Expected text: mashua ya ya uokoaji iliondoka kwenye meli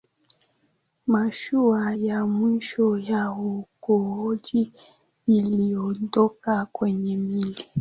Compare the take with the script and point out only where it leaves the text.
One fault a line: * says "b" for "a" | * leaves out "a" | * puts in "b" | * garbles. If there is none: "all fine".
* puts in "mwisho"